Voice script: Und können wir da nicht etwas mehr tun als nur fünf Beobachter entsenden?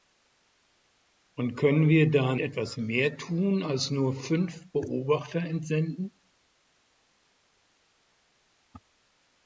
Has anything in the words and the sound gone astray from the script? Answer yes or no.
yes